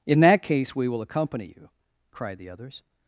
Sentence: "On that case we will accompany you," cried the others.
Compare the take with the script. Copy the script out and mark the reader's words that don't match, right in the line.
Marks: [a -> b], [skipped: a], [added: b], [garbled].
["On -> In] that case we will accompany you," cried the others.